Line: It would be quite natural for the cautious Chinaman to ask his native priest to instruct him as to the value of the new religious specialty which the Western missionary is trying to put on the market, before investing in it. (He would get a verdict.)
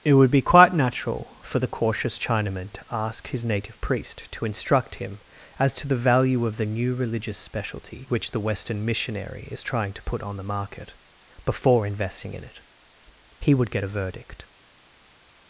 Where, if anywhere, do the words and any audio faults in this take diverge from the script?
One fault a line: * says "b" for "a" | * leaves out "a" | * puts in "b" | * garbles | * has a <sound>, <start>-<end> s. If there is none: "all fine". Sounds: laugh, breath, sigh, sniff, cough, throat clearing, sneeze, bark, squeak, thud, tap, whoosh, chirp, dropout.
all fine